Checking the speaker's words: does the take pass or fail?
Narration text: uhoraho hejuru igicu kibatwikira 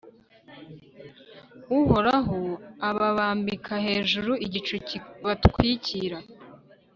fail